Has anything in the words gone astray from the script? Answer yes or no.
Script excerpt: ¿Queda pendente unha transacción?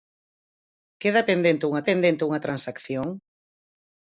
yes